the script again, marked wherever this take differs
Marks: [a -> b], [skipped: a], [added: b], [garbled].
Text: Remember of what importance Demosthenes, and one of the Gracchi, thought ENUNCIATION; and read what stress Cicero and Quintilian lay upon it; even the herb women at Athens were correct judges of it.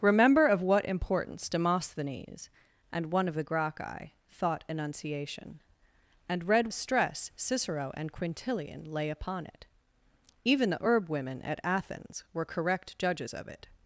Remember of what importance Demosthenes, and one of the Gracchi, thought ENUNCIATION; and read [skipped: what] stress Cicero and Quintilian lay upon it; even the herb women at Athens were correct judges of it.